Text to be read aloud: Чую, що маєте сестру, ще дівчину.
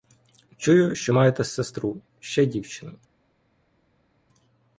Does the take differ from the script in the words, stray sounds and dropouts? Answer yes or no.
no